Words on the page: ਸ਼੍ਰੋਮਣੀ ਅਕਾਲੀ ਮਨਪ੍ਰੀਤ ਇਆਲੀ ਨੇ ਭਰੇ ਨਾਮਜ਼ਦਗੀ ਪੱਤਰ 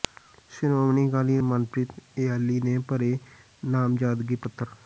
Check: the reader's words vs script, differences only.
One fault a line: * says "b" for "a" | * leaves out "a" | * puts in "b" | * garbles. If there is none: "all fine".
all fine